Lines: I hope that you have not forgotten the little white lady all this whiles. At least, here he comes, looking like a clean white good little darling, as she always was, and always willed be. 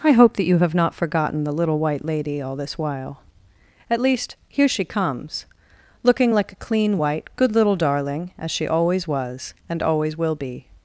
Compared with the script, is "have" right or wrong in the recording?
right